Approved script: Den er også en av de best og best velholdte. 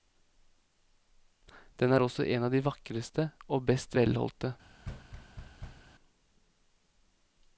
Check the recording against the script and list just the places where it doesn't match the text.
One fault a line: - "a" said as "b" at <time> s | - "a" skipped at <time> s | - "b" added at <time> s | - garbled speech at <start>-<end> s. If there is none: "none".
- "best" said as "vakreste" at 2.7 s